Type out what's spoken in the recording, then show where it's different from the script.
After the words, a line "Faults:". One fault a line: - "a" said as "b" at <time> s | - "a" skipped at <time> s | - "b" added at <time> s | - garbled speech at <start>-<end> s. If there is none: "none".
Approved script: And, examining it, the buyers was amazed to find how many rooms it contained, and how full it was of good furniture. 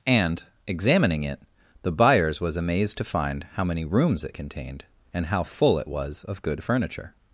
And, examining it, the buyers was amazed to find how many rooms it contained, and how full it was of good furniture.
Faults:
none